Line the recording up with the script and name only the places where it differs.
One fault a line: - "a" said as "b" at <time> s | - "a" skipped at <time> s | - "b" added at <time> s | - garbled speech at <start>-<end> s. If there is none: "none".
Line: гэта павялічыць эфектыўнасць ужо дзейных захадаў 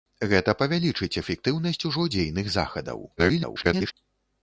- garbled speech at 3.2-3.9 s